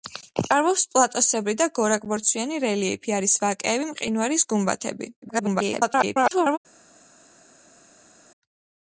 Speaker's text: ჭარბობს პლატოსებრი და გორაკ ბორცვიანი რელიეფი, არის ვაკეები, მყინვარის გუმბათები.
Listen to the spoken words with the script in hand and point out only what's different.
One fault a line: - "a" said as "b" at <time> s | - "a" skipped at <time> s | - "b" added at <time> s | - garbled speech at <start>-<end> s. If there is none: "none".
- garbled speech at 5.2-6.6 s